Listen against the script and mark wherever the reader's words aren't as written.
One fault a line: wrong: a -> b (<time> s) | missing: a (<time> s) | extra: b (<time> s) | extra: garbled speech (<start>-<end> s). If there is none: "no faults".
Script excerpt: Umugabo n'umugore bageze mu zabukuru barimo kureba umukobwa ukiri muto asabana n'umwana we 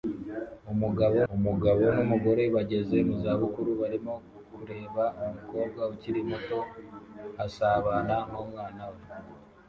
extra: umugabo (1.3 s)